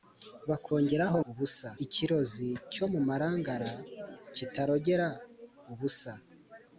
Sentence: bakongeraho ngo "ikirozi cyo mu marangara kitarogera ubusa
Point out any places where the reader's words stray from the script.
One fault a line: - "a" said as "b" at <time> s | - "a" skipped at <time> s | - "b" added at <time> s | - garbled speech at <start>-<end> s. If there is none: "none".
- "ngo" said as "ubusa" at 1.3 s